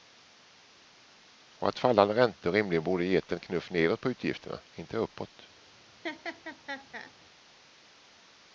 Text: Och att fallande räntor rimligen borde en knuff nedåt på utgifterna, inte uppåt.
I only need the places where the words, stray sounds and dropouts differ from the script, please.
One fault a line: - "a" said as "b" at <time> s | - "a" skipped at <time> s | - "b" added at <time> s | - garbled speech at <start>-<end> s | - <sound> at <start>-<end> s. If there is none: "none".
- "gett" added at 3.0 s
- laugh at 6.0-7.1 s